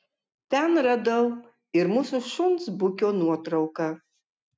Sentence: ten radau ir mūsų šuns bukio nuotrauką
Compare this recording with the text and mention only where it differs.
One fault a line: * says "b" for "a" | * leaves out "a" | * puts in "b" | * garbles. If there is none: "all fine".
all fine